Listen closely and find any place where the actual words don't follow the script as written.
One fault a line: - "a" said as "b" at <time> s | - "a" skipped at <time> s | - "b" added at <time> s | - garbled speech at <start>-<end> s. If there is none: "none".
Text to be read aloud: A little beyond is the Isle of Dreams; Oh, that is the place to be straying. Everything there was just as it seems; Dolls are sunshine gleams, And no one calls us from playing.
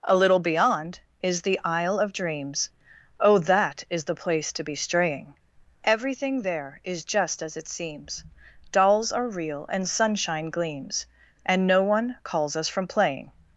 - "was" said as "is" at 6.8 s
- "real and" added at 9.3 s